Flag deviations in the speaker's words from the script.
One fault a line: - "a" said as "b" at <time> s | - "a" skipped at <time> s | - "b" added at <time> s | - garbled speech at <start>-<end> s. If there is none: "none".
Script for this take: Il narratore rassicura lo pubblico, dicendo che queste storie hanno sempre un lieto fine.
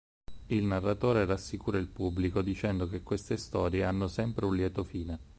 - "lo" said as "il" at 1.8 s